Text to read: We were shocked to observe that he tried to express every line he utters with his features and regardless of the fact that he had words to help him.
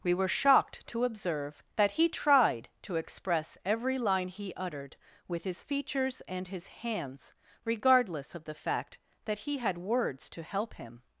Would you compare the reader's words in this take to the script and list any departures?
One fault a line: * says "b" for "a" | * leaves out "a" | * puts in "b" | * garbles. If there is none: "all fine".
* says "uttered" for "utters"
* puts in "his hands"